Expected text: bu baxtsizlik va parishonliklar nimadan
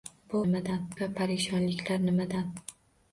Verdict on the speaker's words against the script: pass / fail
fail